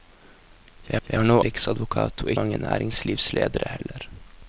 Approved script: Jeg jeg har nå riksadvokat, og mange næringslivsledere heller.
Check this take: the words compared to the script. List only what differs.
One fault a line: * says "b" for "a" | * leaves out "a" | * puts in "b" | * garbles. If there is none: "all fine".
all fine